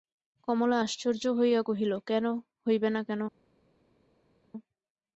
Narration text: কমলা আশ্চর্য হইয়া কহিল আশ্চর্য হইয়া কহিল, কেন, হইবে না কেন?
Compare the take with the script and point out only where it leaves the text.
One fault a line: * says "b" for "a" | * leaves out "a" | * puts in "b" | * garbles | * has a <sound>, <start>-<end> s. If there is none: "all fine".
* leaves out "আশ্চর্য হইয়া কহিল"